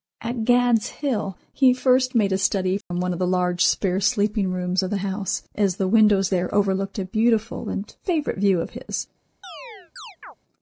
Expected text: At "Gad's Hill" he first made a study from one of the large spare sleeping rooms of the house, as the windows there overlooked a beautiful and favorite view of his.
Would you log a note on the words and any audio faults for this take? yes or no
yes